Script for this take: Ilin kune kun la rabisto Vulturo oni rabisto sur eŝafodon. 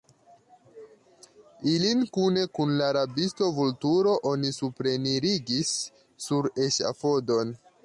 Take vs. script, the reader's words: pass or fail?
fail